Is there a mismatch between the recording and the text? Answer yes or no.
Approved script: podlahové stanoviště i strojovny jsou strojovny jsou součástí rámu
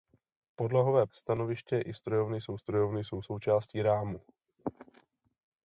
no